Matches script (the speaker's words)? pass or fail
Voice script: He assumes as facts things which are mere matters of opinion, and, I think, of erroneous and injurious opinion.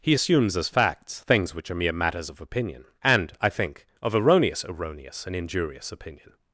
fail